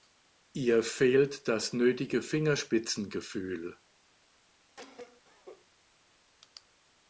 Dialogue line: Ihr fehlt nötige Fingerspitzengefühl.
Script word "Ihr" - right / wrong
right